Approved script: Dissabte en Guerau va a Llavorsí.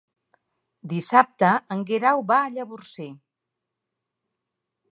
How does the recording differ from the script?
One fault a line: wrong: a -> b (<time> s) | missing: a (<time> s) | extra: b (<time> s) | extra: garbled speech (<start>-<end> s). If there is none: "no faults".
no faults